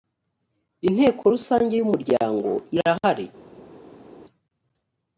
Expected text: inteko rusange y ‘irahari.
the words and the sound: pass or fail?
fail